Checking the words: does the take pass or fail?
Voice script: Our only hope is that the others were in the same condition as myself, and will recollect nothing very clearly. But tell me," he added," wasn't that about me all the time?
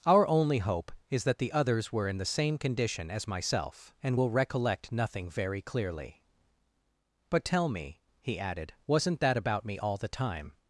pass